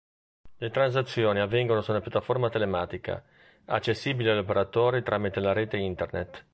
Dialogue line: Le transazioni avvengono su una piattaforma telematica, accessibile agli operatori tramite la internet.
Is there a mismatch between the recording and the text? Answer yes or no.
yes